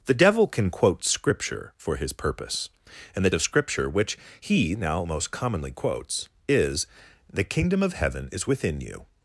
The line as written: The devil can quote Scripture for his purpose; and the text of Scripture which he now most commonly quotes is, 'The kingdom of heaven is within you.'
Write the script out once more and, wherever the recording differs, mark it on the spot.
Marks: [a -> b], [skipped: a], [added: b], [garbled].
The devil can quote Scripture for his purpose; and the [skipped: text] of Scripture which he now most commonly quotes is, 'The kingdom of heaven is within you.'